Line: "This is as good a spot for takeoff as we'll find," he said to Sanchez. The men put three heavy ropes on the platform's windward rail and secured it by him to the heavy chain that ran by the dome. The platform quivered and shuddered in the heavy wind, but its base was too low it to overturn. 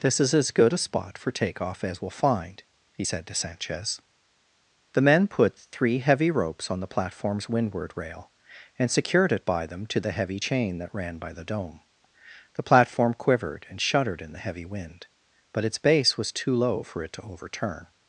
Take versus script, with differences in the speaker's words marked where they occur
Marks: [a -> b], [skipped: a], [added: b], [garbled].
"This is as good a spot for takeoff as we'll find," he said to Sanchez. The men put three heavy ropes on the platform's windward rail and secured it by [him -> them] to the heavy chain that ran by the dome. The platform quivered and shuddered in the heavy wind, but its base was too low [added: for] it to overturn.